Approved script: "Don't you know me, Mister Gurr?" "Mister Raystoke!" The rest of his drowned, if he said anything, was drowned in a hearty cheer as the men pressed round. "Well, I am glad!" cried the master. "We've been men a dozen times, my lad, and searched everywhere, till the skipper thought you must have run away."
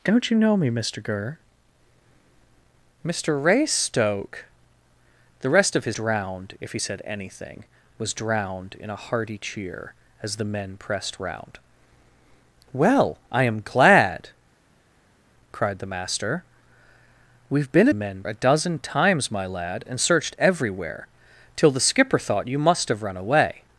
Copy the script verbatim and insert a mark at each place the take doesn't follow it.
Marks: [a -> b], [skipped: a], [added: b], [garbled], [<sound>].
"Don't you know me, Mister Gurr?" "Mister Raystoke!" The rest of his drowned, if he said anything, was drowned in a hearty cheer as the men pressed round. "Well, I am glad!" cried the master. "We've been men a dozen times, my lad, and searched everywhere, till the skipper thought you must have run away."